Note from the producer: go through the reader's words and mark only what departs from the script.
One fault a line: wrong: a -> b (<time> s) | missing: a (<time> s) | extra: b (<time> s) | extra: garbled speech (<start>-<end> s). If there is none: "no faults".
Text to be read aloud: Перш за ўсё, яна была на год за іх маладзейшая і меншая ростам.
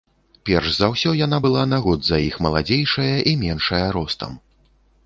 no faults